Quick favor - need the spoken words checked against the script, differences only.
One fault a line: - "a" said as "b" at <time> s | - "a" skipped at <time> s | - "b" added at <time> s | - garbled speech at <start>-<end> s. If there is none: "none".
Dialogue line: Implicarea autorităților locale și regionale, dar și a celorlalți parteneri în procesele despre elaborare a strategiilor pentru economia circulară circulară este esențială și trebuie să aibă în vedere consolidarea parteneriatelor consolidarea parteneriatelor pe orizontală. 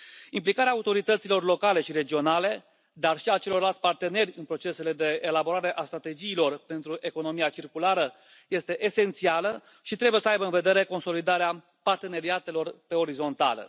- "despre" said as "de" at 4.9 s
- "circulară" skipped at 8.1 s
- "consolidarea parteneriatelor" skipped at 12.8 s